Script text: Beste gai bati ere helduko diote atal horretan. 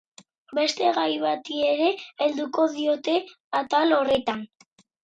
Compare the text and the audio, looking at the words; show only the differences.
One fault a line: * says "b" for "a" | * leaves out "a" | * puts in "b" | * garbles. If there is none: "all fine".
all fine